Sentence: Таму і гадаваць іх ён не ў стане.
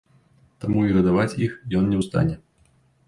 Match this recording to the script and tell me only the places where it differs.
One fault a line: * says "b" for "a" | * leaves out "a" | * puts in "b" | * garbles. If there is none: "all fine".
all fine